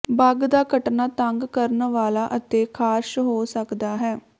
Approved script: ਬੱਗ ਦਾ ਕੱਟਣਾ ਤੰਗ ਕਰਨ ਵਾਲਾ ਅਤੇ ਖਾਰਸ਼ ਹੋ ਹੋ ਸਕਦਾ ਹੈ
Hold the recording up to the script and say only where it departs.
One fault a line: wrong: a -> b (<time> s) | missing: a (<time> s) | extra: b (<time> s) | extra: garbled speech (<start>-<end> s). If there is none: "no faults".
missing: ਹੋ (3.4 s)